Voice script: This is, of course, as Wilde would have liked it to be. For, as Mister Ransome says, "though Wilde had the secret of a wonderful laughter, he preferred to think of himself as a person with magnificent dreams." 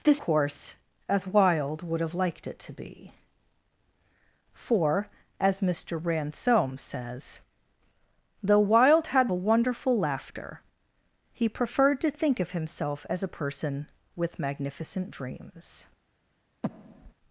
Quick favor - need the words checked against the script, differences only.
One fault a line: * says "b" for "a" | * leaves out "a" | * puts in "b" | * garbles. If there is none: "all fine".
* leaves out "is of"
* leaves out "the secret of"